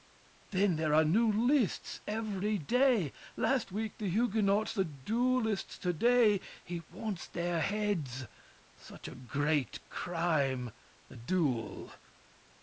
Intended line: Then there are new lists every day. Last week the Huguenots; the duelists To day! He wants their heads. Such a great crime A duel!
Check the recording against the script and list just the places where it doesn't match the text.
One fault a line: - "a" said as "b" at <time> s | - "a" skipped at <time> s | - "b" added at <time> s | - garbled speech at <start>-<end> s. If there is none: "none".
none